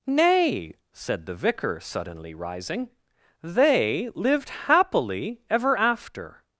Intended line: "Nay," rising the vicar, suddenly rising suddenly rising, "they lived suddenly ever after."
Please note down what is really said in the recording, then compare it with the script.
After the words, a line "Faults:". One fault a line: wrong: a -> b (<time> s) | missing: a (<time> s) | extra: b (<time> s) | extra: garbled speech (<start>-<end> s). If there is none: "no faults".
"Nay," said the vicar, suddenly rising, "they lived happily ever after."
Faults:
wrong: rising -> said (0.9 s)
missing: suddenly rising (2.9 s)
wrong: suddenly -> happily (4.5 s)